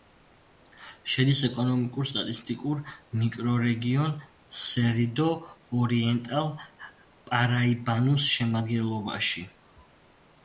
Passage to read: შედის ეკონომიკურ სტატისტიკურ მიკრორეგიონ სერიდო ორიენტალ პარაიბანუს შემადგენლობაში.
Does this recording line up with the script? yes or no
yes